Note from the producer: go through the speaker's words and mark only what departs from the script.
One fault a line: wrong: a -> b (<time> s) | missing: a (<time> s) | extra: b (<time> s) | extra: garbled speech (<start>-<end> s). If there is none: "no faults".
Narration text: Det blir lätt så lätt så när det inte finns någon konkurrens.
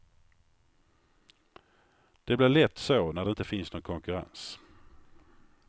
missing: lätt så (3.1 s)